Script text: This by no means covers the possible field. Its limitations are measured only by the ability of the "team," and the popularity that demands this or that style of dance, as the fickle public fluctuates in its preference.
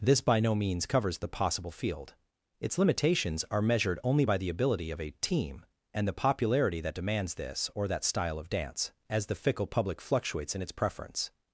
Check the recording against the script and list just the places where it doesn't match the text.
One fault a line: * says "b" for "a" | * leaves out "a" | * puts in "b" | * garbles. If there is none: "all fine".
* says "a" for "the"